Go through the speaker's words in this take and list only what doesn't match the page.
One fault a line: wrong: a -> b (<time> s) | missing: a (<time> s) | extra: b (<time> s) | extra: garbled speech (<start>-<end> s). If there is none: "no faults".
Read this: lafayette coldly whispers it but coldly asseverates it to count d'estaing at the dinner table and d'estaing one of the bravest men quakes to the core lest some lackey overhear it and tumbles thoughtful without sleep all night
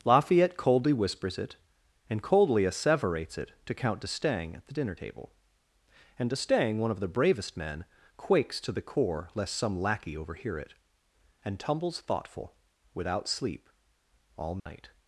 wrong: but -> and (2.1 s)